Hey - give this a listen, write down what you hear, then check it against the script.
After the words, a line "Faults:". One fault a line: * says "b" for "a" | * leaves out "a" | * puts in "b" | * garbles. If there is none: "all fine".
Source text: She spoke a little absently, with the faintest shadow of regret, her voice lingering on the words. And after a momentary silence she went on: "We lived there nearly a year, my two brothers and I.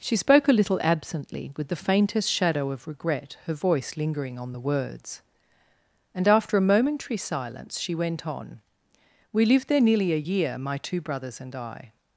She spoke a little absently, with the faintest shadow of regret, her voice lingering on the words. And after a momentary silence she went on: "We lived there nearly a year, my two brothers and I.
Faults:
all fine